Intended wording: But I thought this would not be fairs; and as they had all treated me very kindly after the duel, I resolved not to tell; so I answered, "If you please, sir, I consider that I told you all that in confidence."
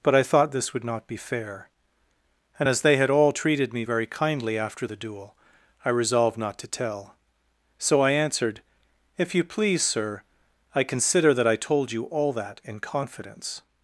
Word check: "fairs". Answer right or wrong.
wrong